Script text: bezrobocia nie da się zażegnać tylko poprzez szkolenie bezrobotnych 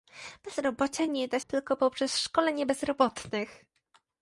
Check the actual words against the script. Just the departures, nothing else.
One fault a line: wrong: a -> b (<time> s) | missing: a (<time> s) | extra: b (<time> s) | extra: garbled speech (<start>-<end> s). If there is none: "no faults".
missing: się zażegnać (1.4 s)